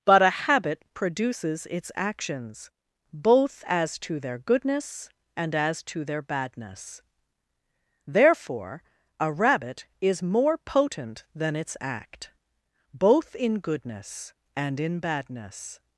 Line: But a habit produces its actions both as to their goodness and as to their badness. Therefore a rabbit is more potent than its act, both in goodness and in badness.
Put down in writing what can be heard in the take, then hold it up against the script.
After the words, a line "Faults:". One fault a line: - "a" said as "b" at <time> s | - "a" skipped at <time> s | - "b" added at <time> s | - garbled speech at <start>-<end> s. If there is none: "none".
But a habit produces its actions both as to their goodness and as to their badness. Therefore a rabbit is more potent than its act, both in goodness and in badness.
Faults:
none